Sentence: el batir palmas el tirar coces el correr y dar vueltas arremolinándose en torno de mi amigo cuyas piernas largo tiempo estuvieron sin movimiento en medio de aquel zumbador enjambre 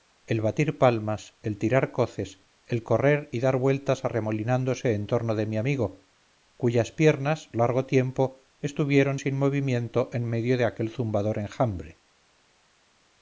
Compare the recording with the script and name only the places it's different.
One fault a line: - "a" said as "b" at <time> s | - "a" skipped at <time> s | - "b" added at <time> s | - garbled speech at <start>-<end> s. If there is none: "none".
none